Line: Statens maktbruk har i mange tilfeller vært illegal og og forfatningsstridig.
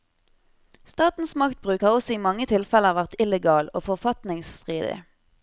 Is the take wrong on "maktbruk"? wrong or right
right